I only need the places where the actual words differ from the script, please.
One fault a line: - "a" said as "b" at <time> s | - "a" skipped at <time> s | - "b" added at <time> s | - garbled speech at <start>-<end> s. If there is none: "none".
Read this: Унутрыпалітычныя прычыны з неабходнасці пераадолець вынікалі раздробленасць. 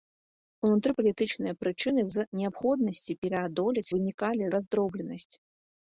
none